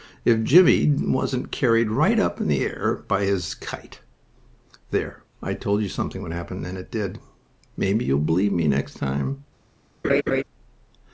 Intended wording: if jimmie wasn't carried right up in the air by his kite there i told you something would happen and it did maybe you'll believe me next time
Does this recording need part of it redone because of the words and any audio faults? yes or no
yes